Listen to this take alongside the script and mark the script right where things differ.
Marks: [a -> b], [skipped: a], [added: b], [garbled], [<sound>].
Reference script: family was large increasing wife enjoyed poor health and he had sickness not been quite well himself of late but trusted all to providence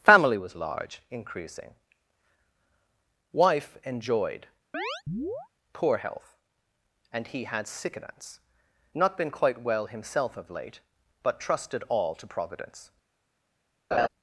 family was large increasing wife enjoyed [chirp] poor health and he had sickness not been quite well himself of late but trusted all to providence [laugh]